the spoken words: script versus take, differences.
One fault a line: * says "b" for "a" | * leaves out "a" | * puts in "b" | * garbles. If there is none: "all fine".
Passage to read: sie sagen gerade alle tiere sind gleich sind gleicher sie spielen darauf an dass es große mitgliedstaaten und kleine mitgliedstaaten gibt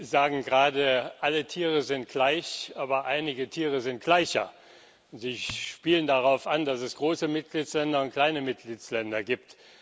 * puts in "aber einige tiere"